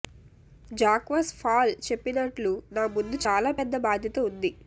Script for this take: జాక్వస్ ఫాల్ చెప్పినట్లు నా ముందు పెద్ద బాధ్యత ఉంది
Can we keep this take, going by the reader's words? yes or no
no